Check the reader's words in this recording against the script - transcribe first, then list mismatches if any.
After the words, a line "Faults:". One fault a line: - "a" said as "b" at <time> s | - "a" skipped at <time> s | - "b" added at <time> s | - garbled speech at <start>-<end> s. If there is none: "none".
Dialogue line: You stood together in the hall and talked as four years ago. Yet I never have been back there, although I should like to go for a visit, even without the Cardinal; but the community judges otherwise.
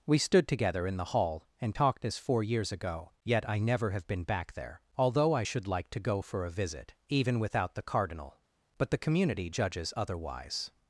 We stood together in the hall and talked as four years ago. Yet I never have been back there, although I should like to go for a visit, even without the Cardinal; but the community judges otherwise.
Faults:
- "You" said as "We" at 0.1 s